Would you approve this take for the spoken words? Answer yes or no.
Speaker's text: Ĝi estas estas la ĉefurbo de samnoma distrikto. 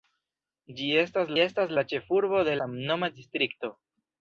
yes